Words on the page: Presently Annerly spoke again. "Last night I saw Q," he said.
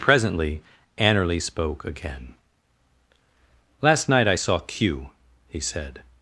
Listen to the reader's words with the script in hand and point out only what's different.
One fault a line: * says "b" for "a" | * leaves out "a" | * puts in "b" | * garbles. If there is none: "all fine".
all fine